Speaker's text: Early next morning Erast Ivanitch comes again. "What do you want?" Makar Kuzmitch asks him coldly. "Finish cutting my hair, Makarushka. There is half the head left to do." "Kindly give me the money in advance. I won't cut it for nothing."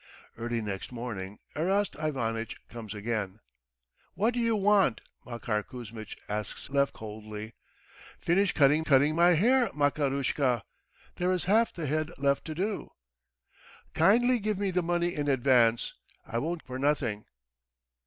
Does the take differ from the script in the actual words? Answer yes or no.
yes